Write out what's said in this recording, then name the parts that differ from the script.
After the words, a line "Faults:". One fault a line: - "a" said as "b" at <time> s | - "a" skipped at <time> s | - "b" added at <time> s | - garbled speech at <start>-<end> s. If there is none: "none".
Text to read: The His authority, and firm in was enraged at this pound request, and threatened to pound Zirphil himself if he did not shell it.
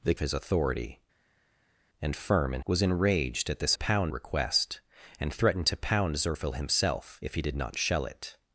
The His authority, and firm in was enraged at this pound request, and threatened to pound Zirphil himself if he did not shell it.
Faults:
none